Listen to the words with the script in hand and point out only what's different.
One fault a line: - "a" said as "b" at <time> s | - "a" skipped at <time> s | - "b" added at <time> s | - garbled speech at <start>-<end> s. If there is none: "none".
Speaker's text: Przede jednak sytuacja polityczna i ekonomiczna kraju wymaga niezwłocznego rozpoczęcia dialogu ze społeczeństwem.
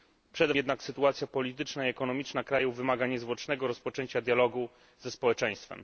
none